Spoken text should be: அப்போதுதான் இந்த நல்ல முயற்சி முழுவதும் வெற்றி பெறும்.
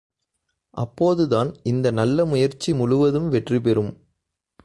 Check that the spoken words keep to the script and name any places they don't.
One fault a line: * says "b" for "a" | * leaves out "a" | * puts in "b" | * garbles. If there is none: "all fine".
all fine